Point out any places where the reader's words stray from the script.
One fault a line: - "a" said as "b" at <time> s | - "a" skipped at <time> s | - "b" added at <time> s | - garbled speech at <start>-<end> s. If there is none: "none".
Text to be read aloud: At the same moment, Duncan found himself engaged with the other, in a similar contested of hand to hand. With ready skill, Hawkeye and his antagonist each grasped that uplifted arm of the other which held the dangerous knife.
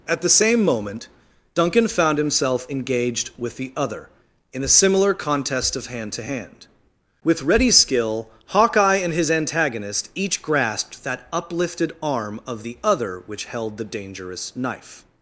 - "contested" said as "contest" at 5.1 s